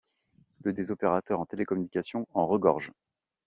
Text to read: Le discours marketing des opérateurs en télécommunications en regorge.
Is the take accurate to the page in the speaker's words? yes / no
no